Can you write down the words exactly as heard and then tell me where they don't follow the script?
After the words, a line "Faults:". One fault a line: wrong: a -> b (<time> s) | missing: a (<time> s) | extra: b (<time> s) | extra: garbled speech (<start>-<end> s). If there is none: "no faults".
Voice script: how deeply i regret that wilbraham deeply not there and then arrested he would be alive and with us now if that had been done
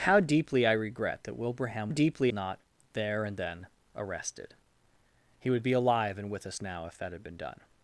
how deeply i regret that wilbraham deeply not there and then arrested he would be alive and with us now if that had been done
Faults:
no faults